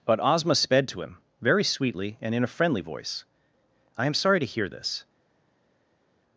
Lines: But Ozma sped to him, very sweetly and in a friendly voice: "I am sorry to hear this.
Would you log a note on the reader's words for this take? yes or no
no